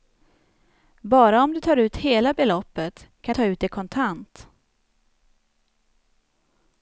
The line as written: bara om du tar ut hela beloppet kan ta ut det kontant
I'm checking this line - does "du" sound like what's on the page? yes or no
yes